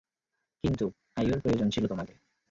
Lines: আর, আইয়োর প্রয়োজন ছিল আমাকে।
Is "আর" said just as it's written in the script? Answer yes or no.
no